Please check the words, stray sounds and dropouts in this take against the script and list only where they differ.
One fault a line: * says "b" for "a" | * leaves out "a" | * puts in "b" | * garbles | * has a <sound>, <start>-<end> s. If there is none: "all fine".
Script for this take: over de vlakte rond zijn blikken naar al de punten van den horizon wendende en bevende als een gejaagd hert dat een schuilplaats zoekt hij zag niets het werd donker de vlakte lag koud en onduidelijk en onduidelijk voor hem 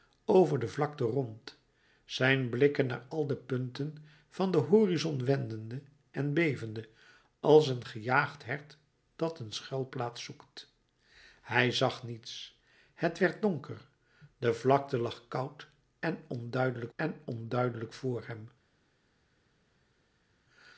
all fine